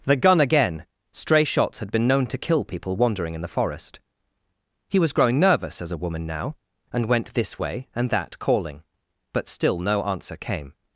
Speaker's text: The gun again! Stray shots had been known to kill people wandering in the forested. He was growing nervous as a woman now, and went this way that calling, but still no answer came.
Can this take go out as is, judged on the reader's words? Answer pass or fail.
fail